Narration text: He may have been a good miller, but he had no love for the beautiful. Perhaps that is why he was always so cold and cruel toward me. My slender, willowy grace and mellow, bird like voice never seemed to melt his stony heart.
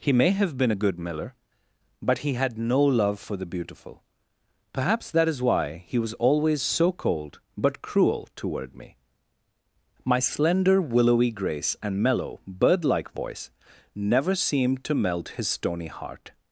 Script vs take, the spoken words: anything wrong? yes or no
yes